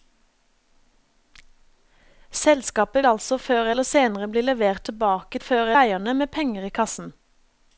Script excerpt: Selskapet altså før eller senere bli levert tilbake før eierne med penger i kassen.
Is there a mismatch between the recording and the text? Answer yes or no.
no